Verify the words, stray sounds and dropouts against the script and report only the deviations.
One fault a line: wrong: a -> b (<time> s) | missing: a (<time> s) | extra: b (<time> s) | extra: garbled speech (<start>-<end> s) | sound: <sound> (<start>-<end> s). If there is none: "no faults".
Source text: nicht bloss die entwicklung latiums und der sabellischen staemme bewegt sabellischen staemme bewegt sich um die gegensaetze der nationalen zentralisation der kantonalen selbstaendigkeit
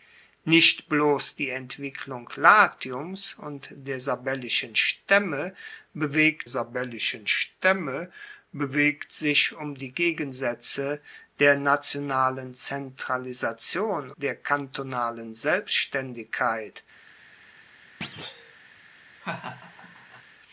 sound: thud (18.0-18.6 s)
sound: laugh (19.2-20.2 s)